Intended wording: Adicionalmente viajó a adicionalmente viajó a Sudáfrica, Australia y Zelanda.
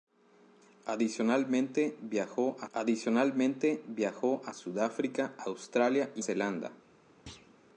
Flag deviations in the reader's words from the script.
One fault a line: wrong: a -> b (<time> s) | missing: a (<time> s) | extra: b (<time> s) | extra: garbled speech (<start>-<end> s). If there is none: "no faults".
no faults